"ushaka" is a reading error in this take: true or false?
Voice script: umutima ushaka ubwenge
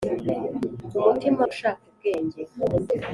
false